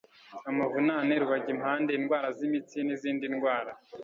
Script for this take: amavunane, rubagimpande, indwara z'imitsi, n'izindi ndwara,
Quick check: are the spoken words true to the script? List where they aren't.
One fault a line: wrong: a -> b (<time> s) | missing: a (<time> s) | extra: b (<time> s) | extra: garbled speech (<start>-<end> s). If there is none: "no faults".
no faults